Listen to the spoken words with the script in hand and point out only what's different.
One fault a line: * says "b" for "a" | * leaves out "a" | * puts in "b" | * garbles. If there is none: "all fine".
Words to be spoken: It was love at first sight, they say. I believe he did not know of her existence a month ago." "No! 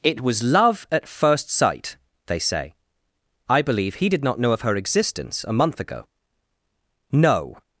all fine